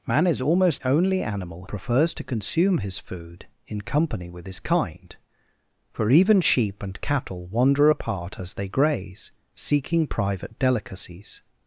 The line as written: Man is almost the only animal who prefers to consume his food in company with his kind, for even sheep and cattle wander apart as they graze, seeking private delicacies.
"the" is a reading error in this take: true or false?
true